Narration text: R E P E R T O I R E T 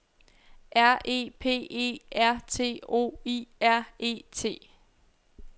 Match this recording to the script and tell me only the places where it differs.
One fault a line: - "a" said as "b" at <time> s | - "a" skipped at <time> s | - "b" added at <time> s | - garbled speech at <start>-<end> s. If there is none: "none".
none